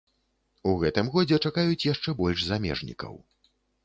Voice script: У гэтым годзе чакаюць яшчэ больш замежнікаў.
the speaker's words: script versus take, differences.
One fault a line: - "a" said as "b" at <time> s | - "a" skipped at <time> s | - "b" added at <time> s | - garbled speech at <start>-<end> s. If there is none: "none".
none